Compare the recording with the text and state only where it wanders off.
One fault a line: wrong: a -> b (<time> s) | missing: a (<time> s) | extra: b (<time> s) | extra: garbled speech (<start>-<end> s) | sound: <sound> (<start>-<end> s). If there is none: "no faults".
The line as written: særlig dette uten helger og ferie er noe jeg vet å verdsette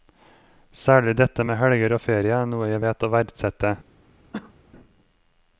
wrong: uten -> med (1.5 s)
sound: cough (4.3-4.5 s)